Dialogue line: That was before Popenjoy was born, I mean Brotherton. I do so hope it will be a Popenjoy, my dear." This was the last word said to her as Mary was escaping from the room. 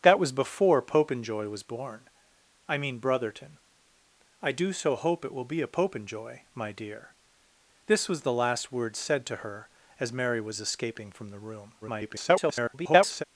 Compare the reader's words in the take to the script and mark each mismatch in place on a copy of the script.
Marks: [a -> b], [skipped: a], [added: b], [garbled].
That was before Popenjoy was born, I mean Brotherton. I do so hope it will be a Popenjoy, my dear." This was the last word said to her as Mary was escaping from the room. [garbled]